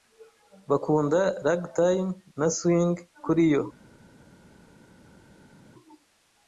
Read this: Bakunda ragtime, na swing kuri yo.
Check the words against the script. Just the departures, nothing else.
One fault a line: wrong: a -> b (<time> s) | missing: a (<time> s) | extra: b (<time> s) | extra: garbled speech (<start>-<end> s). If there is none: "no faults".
no faults